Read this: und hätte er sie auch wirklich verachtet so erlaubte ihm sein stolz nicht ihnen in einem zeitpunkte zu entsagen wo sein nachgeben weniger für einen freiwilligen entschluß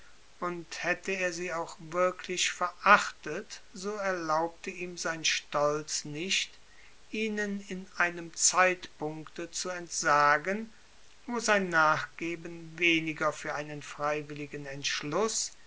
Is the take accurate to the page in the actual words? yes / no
yes